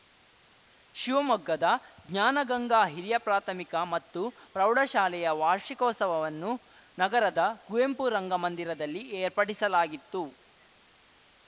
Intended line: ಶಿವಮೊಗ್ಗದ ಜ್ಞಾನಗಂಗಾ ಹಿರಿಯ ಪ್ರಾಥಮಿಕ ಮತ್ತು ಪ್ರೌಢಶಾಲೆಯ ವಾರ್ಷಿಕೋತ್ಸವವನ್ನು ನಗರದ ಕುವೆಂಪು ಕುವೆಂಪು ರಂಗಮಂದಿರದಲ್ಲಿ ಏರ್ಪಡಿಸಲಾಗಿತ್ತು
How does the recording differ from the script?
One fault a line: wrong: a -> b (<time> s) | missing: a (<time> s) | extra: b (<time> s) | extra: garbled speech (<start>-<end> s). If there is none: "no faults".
missing: ಕುವೆಂಪು (8.1 s)